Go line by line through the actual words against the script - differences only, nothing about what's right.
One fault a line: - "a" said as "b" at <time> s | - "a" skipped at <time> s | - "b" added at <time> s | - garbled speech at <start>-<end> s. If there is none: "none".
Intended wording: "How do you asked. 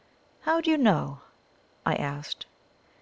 - "know I" added at 0.8 s